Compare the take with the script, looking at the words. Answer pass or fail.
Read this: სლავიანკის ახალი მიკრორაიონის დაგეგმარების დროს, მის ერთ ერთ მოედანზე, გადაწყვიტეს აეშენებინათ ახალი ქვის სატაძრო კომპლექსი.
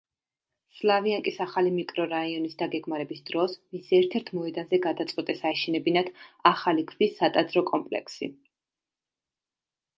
pass